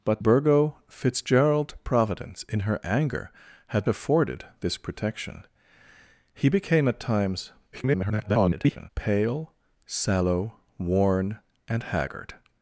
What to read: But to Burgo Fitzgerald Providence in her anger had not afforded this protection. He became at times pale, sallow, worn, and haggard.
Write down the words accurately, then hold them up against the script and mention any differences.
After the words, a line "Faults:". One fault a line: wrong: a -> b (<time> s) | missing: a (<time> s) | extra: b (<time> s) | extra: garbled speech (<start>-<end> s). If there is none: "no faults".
But Burgo Fitzgerald Providence in her anger had afforded this protection. He became at times [garbled] pale, sallow, worn, and haggard.
Faults:
missing: to (0.2 s)
missing: not (3.9 s)
extra: garbled speech (7.7-8.9 s)